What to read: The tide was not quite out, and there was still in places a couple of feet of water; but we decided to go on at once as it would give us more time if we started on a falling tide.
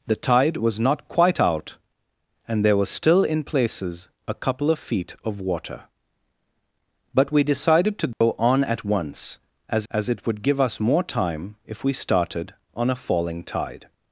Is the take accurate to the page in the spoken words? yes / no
no